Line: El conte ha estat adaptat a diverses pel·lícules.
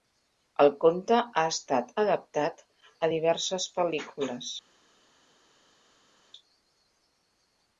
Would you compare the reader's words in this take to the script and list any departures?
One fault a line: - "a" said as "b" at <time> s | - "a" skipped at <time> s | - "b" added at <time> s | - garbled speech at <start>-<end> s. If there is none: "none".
none